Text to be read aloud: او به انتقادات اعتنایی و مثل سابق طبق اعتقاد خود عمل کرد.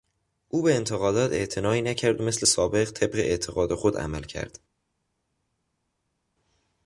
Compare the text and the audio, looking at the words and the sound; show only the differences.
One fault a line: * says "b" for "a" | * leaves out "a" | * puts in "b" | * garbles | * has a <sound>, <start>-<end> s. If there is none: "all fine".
* puts in "نکرد"